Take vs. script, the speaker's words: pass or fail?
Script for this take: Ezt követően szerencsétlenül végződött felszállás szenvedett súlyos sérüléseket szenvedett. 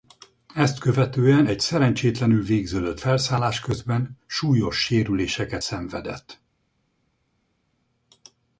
fail